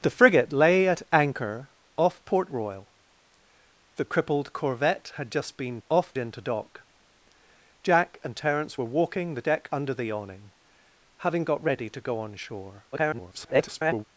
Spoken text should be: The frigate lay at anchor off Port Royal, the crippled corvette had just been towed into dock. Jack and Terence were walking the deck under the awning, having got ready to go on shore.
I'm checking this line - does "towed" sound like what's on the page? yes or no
no